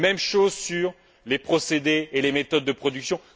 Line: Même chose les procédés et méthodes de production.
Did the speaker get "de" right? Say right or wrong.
right